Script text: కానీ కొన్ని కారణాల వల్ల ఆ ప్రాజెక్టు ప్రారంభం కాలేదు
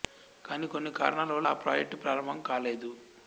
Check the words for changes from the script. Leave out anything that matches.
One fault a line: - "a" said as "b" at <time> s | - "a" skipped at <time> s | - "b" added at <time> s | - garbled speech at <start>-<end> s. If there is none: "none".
none